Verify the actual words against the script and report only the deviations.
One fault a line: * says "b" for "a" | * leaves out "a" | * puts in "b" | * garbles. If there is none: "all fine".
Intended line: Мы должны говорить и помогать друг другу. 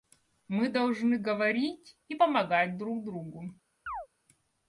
all fine